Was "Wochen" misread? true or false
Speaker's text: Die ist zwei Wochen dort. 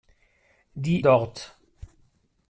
true